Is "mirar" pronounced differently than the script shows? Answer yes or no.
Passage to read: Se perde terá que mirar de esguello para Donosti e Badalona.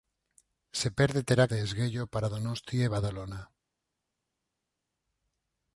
yes